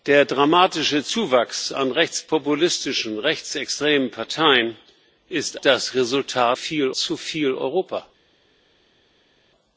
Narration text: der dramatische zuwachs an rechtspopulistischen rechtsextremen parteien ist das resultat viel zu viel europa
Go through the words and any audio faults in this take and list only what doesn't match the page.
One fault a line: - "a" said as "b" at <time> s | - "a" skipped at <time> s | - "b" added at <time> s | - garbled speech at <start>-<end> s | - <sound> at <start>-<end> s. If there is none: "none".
none